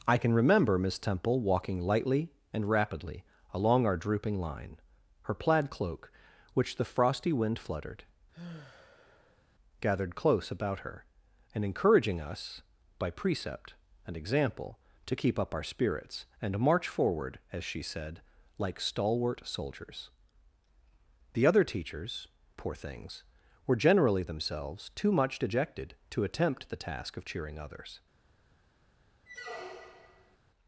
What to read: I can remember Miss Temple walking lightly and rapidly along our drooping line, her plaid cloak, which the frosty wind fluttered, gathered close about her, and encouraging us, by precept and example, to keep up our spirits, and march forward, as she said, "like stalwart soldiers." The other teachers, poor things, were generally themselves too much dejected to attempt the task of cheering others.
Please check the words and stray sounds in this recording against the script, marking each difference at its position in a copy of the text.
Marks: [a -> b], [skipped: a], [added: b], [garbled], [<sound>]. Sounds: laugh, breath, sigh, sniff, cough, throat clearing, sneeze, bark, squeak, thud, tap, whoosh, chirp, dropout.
I can remember Miss Temple walking lightly and rapidly along our drooping line, her plaid cloak, which the frosty wind fluttered, [sigh] gathered close about her, and encouraging us, by precept and example, to keep up our spirits, and march forward, as she said, "like stalwart soldiers." The other teachers, poor things, were generally themselves too much dejected to attempt the task of cheering others. [squeak]